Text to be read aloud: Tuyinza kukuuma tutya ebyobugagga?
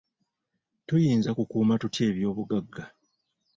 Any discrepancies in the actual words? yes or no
no